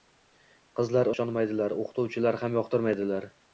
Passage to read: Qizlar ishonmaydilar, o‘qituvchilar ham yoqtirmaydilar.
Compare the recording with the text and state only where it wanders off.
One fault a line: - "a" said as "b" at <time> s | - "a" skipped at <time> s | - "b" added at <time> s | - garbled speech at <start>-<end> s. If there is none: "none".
none